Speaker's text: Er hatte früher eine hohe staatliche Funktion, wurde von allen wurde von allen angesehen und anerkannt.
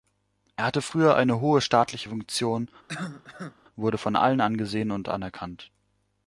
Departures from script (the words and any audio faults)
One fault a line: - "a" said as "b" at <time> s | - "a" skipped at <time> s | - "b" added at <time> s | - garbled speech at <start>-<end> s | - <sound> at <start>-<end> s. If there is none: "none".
- cough at 2.9-3.6 s
- "wurde von allen" skipped at 4.4 s